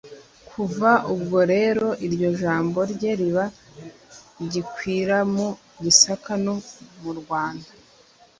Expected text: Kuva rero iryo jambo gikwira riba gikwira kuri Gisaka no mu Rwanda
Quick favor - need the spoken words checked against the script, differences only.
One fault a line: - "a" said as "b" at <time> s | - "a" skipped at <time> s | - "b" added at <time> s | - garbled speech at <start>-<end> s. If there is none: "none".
- "ubwo" added at 1.1 s
- "gikwira" said as "rye" at 2.9 s
- "kuri" said as "mu" at 5.3 s